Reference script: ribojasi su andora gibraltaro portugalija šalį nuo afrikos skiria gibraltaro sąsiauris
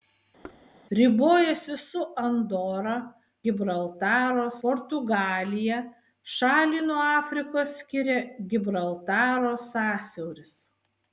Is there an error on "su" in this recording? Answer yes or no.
no